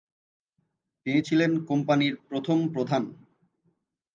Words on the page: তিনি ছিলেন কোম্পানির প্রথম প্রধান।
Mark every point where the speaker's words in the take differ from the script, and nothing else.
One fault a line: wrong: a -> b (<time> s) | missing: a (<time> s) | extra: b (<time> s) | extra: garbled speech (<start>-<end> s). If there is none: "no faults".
no faults